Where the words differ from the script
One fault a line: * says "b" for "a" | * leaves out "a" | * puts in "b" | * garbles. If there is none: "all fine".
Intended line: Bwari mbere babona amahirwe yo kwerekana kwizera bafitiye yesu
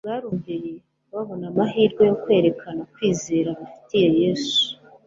all fine